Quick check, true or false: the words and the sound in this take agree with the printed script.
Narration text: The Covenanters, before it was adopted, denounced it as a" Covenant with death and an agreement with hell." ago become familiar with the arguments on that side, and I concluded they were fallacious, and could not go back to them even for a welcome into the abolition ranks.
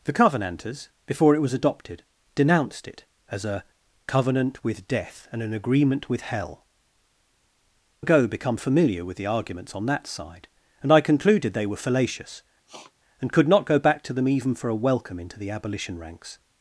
false